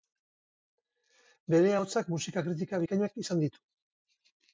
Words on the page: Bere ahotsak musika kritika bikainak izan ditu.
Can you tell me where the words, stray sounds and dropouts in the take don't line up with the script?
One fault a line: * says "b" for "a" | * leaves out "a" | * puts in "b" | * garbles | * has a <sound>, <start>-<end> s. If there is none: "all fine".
all fine